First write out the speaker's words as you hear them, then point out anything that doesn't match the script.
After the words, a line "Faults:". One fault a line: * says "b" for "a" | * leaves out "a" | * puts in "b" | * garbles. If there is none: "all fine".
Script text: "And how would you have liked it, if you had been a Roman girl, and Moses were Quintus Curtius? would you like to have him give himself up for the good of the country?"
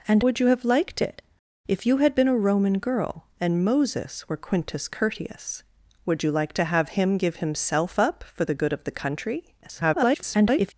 "And would you have liked it, if you had been a Roman girl, and Moses were Quintus Curtius? would you like to have him give himself up for the good of the country?" [garbled]
Faults:
* leaves out "how"
* garbles